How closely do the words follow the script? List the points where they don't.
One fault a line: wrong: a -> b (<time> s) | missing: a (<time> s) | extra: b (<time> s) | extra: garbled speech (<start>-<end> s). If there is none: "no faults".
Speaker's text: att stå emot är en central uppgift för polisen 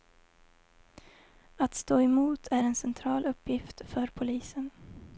no faults